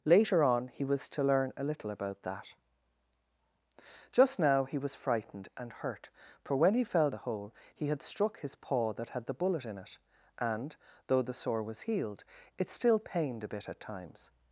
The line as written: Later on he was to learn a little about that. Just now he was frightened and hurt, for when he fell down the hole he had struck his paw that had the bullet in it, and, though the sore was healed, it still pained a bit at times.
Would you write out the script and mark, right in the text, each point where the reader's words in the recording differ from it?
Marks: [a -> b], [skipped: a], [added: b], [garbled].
Later on he was to learn a little about that. Just now he was frightened and hurt, for when he fell [skipped: down] the hole he had struck his paw that had the bullet in it, and, though the sore was healed, it still pained a bit at times.